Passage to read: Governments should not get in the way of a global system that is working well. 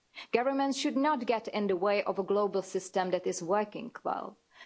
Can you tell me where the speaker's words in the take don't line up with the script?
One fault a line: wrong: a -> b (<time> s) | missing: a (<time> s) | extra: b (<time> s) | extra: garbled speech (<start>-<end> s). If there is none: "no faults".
no faults